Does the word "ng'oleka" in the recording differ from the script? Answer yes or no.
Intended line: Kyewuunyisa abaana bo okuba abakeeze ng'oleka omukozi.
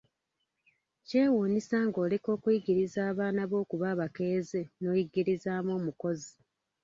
yes